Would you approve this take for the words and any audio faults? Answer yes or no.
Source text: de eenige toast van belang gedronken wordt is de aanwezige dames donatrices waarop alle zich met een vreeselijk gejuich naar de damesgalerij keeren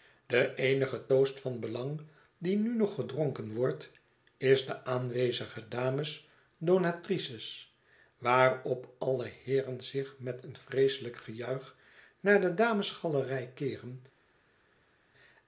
no